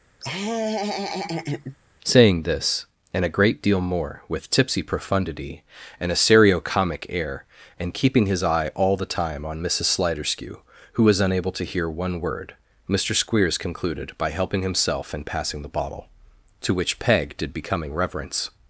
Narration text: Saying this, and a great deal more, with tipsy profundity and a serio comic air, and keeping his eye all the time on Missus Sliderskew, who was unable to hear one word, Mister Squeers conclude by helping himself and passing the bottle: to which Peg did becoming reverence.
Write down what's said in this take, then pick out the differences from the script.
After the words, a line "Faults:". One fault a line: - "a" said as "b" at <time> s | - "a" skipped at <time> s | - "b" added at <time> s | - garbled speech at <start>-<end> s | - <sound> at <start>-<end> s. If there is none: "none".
Saying this, and a great deal more, with tipsy profundity and a serio comic air, and keeping his eye all the time on Missus Sliderskew, who was unable to hear one word, Mister Squeers concluded by helping himself and passing the bottle: to which Peg did becoming reverence.
Faults:
- laugh at 0.2-1.8 s
- "conclude" said as "concluded" at 13.6 s